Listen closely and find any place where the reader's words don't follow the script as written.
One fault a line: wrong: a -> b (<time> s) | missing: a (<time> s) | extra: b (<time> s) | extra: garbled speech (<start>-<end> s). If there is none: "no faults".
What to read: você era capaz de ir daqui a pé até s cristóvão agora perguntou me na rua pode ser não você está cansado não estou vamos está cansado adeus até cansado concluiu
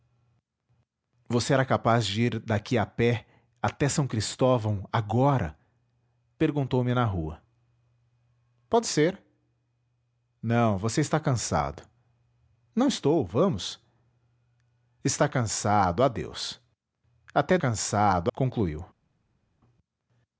no faults